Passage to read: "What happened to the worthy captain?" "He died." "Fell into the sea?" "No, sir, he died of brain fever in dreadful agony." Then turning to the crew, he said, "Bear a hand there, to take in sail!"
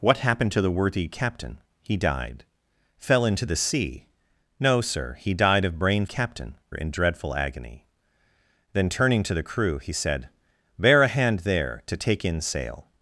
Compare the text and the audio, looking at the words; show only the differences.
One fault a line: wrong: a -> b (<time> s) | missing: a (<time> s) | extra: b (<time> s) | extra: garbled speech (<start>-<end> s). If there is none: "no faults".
wrong: fever -> captain (6.0 s)